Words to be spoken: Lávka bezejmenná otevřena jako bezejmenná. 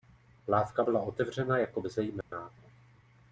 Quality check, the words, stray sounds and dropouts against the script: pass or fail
fail